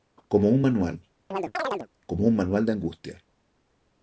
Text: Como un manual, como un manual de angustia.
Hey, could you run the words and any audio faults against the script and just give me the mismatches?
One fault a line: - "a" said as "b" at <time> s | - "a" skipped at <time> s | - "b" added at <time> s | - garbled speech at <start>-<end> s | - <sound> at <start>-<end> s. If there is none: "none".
- chirp at 1.3-1.9 s